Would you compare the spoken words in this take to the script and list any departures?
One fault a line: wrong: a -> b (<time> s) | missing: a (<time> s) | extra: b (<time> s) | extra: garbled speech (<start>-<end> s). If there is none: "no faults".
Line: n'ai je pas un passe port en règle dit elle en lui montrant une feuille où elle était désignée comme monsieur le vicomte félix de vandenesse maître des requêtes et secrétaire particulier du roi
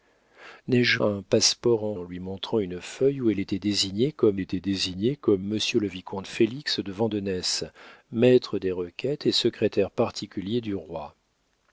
missing: pas (1.0 s)
missing: règle dit elle (1.9 s)
extra: était désignée comme (4.4 s)